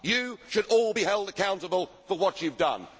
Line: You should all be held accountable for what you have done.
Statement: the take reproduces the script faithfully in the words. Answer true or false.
true